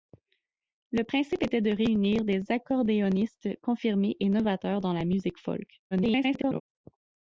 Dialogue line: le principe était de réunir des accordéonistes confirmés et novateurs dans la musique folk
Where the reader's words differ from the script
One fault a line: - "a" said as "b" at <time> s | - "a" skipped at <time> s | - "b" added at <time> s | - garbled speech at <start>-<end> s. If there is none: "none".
- garbled speech at 5.9-6.6 s